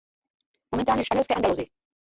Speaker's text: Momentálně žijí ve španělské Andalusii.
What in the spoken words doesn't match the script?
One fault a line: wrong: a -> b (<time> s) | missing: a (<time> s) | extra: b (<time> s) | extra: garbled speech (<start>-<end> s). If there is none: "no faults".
missing: žijí ve (1.0 s)